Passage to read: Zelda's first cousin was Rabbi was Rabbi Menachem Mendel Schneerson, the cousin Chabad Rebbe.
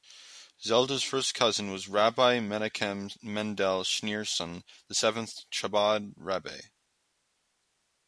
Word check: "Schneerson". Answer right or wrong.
right